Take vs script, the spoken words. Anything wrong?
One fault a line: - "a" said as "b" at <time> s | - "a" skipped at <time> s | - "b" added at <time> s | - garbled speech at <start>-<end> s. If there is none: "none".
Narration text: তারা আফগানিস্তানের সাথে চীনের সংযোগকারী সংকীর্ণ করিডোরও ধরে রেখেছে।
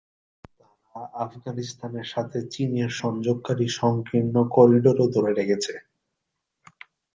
none